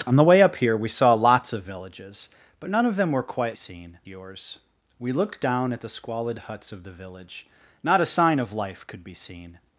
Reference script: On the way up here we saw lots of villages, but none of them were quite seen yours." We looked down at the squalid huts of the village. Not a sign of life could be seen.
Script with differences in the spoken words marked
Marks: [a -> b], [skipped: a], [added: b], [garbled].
On the way up here we saw lots of villages, but none of them were quite seen yours." We looked down at the squalid huts of the village. Not a sign of life could be seen.